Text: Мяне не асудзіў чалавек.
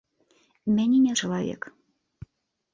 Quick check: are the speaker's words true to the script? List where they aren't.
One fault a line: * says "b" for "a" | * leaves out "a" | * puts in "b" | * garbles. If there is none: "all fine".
* leaves out "асудзіў"